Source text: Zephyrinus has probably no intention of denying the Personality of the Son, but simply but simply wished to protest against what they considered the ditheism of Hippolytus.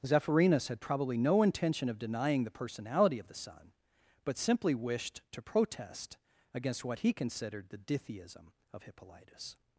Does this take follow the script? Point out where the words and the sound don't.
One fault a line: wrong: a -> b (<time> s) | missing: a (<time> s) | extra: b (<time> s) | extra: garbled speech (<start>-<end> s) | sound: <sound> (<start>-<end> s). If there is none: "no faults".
wrong: has -> had (0.7 s)
missing: but simply (4.7 s)
wrong: they -> he (7.0 s)